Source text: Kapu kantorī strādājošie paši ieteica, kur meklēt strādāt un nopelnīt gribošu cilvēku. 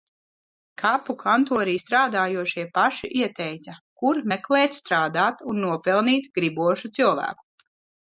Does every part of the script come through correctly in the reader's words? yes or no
yes